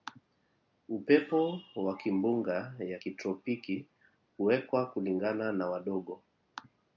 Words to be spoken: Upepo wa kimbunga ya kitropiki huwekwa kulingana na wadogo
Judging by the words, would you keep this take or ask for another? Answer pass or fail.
pass